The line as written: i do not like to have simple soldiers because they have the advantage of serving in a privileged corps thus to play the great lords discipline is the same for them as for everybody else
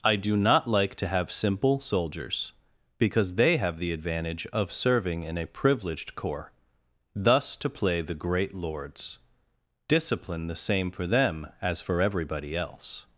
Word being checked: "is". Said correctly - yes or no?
no